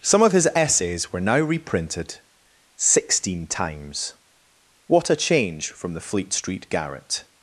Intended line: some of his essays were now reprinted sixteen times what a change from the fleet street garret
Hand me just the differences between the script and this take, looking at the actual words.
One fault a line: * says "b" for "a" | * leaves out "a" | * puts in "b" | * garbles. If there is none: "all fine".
all fine